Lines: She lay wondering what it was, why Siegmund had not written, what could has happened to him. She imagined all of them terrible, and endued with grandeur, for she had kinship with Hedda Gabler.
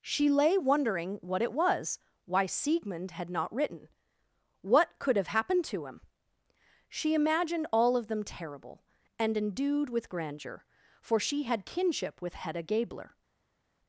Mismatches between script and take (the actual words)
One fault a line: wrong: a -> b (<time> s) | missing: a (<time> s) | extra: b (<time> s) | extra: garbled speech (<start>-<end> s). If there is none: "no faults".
wrong: has -> have (5.2 s)